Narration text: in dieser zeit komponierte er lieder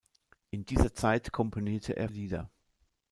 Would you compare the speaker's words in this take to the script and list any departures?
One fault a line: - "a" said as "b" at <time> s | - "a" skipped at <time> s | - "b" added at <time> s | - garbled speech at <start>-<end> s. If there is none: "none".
none